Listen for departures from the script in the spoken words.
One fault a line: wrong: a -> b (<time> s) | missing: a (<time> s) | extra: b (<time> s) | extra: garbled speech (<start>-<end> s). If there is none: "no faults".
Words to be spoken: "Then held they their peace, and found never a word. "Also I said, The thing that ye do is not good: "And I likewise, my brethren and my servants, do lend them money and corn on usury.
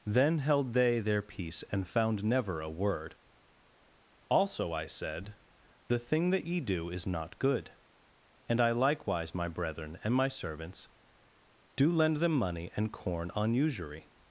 no faults